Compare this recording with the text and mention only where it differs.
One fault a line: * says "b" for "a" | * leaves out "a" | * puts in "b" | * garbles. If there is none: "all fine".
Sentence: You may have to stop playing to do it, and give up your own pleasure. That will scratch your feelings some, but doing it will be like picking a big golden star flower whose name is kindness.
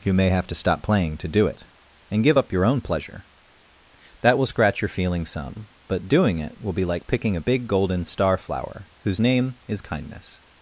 all fine